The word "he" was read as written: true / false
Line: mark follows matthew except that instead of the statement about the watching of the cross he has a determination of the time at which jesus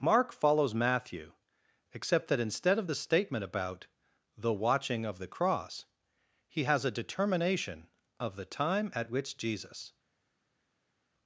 true